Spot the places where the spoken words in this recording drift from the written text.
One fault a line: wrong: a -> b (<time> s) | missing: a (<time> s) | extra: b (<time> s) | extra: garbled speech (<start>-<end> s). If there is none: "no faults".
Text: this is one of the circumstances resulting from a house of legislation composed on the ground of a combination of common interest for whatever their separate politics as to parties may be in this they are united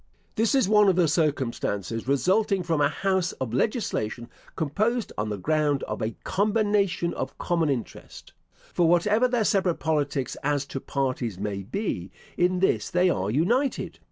no faults